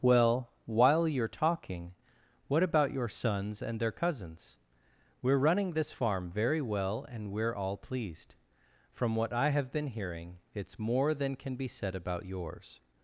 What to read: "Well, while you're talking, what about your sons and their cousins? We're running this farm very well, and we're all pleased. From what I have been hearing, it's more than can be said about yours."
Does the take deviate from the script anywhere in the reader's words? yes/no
no